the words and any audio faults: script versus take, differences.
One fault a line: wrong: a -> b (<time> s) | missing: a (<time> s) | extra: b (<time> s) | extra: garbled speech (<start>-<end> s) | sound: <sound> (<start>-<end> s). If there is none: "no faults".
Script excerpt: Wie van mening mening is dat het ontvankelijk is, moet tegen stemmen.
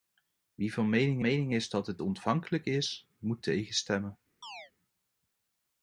sound: chirp (4.4-4.7 s)